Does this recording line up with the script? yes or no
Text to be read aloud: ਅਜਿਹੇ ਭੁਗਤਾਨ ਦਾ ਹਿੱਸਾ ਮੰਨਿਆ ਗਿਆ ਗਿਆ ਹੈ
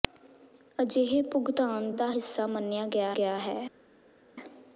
yes